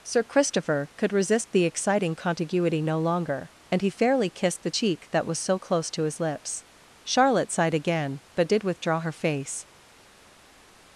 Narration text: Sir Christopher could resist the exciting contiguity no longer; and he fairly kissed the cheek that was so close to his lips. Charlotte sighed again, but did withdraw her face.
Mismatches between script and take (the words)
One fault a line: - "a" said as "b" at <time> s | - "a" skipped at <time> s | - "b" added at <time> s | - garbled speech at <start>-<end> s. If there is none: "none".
none